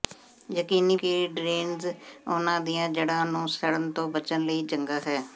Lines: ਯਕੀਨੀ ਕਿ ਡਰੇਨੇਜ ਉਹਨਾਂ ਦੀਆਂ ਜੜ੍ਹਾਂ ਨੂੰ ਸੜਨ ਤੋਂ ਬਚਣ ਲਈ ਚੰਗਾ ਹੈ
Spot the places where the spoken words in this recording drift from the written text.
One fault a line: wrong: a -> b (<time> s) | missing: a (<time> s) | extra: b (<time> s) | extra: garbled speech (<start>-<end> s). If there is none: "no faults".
no faults